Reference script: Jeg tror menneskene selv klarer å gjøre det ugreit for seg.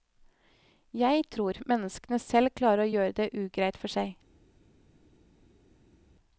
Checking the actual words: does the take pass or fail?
pass